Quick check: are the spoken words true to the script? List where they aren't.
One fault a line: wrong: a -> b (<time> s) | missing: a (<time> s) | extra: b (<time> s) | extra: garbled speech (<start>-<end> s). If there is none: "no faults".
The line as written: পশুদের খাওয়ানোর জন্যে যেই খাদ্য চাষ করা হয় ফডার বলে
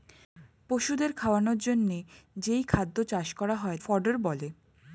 no faults